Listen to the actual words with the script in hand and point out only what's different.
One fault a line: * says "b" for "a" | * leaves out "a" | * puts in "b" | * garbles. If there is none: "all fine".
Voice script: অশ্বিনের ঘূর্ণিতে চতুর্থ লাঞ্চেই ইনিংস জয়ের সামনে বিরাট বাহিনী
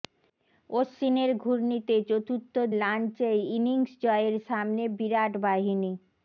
all fine